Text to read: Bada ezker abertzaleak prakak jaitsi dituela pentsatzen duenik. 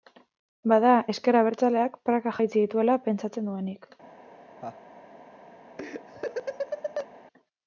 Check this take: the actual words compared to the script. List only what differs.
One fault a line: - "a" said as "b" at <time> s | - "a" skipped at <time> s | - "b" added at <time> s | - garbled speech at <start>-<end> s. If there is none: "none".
none